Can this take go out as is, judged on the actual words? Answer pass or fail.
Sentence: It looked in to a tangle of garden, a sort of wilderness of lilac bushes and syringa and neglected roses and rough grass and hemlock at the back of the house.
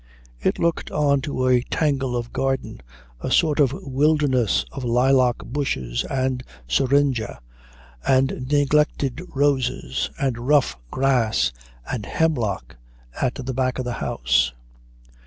fail